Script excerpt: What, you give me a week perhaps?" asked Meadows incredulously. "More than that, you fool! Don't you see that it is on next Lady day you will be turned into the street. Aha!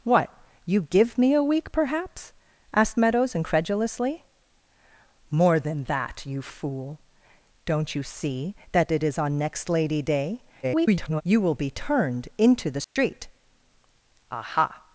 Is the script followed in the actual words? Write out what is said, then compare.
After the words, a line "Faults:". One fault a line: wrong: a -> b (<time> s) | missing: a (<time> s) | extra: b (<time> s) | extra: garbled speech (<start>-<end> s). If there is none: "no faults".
What, you give me a week perhaps?" asked Meadows incredulously. "More than that, you fool! Don't you see that it is on next Lady day [garbled] you will be turned into the street. Aha!
Faults:
extra: garbled speech (10.6-11.2 s)